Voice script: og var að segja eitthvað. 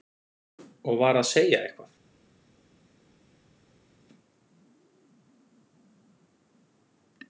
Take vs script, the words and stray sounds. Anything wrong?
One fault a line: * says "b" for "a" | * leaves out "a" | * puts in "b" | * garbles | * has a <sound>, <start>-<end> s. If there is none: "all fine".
all fine